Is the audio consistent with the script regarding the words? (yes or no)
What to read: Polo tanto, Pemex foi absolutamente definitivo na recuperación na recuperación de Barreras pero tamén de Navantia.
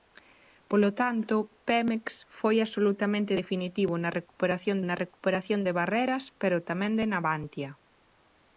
yes